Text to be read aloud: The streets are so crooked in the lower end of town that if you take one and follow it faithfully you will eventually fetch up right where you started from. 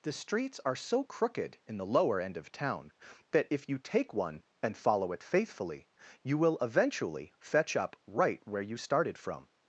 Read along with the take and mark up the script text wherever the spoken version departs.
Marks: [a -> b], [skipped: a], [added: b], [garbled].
The streets are so crooked in the lower end of town that if you take one and follow it faithfully you will eventually fetch up right where you started from.